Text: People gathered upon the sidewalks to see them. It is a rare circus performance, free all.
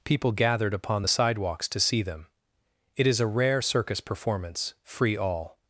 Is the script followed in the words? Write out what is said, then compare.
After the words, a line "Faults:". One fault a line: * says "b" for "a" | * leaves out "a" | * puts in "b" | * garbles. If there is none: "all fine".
People gathered upon the sidewalks to see them. It is a rare circus performance, free all.
Faults:
all fine